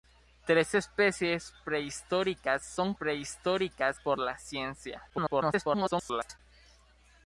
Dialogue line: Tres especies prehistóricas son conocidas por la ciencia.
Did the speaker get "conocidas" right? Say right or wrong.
wrong